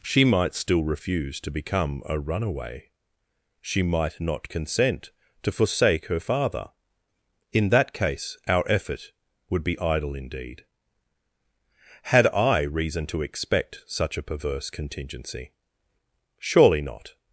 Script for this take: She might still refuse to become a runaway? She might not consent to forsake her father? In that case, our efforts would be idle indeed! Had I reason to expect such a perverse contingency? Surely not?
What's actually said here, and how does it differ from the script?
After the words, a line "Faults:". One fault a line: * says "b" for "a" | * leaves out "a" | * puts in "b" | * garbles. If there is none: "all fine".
She might still refuse to become a runaway? She might not consent to forsake her father? In that case, our effort would be idle indeed! Had I reason to expect such a perverse contingency? Surely not?
Faults:
* says "effort" for "efforts"